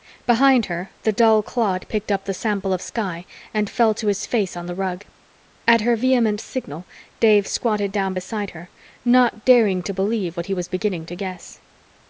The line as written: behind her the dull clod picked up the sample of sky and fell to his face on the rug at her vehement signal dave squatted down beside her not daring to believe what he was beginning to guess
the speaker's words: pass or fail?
pass